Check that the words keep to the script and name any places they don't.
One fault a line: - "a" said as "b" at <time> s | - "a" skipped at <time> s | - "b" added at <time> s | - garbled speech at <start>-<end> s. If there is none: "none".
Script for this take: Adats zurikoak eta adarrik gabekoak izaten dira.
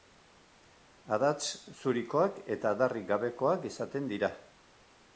none